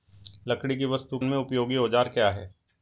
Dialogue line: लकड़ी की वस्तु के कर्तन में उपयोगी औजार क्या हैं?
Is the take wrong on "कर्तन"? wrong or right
wrong